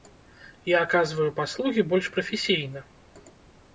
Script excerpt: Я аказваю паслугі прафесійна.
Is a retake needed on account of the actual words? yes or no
yes